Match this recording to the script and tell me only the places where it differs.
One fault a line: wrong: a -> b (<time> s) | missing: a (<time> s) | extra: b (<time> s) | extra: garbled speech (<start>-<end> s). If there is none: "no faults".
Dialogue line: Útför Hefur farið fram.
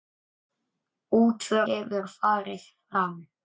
no faults